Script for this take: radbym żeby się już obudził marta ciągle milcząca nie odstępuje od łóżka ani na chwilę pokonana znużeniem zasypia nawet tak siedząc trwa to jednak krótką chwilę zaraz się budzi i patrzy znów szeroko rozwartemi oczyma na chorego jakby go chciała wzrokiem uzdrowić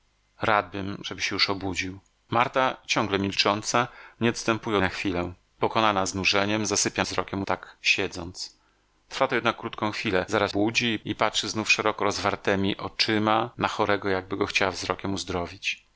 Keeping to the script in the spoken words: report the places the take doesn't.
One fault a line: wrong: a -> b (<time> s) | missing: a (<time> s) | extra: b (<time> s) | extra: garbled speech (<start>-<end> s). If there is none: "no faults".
missing: od łóżka ani (4.8 s)
wrong: nawet -> wzrokiem (7.0 s)
missing: się (10.5 s)